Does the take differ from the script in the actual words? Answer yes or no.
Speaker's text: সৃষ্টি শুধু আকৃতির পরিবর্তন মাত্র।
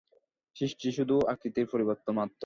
no